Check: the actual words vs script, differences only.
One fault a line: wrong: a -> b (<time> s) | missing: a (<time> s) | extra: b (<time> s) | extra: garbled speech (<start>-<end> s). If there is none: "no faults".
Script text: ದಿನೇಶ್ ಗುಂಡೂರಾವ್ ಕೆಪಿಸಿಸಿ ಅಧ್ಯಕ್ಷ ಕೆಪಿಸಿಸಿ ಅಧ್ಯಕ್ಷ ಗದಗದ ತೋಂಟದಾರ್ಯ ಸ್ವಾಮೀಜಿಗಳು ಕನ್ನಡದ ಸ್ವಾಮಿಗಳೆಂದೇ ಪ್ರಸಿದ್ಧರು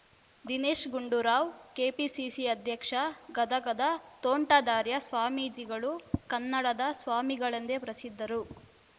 missing: ಕೆಪಿಸಿಸಿ ಅಧ್ಯಕ್ಷ (2.9 s)